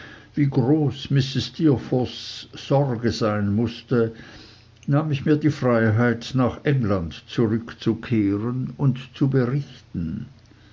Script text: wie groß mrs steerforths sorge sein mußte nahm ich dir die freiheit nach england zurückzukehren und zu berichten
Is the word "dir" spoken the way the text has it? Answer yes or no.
no